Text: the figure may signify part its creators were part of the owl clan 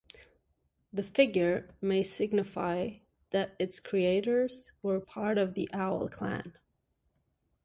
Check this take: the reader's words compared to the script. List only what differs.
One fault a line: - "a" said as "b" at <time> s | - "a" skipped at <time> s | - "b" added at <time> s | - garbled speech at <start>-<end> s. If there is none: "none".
- "part" said as "that" at 3.3 s